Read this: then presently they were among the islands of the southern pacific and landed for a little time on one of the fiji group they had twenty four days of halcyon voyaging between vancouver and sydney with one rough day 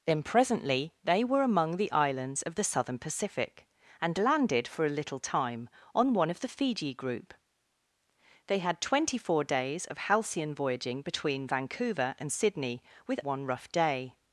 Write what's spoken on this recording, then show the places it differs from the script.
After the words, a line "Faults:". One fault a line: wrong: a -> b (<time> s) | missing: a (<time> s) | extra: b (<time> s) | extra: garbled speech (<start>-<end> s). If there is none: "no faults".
then presently they were among the islands of the southern pacific and landed for a little time on one of the fiji group they had twenty four days of halcyon voyaging between vancouver and sydney with one rough day
Faults:
no faults